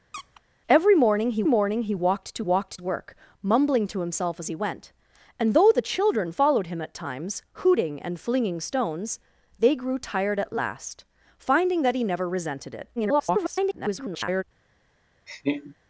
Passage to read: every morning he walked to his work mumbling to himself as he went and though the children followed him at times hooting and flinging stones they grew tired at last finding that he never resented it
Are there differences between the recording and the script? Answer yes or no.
yes